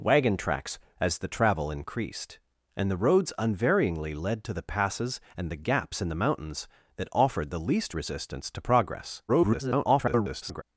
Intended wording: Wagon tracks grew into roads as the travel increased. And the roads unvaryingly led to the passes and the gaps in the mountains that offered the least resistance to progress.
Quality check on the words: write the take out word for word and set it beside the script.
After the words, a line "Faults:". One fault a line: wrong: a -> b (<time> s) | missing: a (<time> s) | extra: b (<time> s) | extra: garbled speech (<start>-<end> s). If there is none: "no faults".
Wagon tracks as the travel increased. And the roads unvaryingly led to the passes and the gaps in the mountains that offered the least resistance to progress. [garbled]
Faults:
missing: grew into roads (0.8 s)
extra: garbled speech (9.3-10.6 s)